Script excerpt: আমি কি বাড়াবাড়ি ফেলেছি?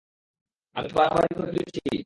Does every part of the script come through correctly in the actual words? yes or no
no